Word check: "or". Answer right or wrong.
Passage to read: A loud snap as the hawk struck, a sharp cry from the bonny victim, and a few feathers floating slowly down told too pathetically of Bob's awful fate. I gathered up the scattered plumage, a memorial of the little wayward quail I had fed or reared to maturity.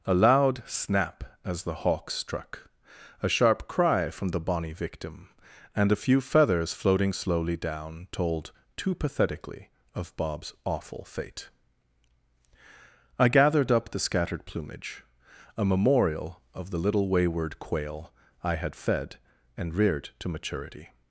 wrong